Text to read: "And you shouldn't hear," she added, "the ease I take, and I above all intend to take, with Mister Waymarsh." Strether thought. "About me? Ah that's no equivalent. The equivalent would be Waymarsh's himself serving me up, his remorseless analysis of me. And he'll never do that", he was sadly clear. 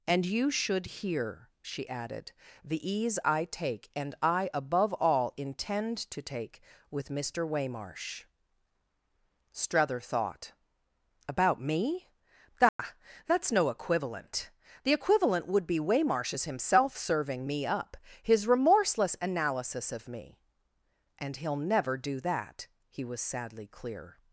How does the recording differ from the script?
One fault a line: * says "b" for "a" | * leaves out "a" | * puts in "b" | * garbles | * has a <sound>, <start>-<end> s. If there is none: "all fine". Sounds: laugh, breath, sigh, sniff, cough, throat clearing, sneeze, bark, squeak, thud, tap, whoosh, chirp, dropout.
* says "should" for "shouldn't"
* has a dropout, 12.7-12.8 s